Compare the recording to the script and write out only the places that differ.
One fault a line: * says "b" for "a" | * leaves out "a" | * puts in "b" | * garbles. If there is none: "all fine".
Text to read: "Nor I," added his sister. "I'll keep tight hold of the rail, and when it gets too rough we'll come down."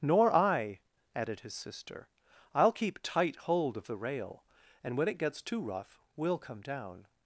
all fine